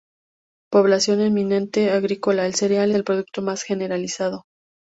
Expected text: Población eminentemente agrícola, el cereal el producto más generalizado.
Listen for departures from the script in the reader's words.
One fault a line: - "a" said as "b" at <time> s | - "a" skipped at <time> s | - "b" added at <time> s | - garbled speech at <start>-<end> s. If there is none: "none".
none